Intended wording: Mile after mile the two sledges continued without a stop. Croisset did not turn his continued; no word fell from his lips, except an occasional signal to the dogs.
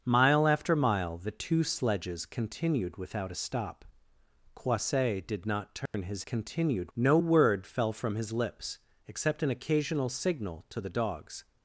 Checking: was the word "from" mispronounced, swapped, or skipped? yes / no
no